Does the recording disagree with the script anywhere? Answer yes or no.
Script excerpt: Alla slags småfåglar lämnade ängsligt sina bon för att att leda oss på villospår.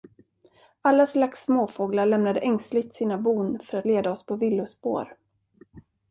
yes